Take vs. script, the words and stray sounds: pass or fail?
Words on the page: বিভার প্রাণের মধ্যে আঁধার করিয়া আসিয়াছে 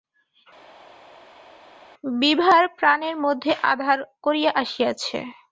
pass